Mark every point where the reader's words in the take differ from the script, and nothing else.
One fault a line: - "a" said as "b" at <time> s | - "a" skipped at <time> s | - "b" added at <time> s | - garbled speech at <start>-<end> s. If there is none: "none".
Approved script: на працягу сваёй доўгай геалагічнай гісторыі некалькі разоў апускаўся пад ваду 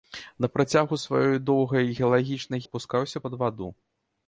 - "гісторыі некалькі разоў" skipped at 2.6 s